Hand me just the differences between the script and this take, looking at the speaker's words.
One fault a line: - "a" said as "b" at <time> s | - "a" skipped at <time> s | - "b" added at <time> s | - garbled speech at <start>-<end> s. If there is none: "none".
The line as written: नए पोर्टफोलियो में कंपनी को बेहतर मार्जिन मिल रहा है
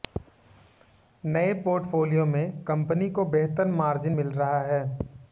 none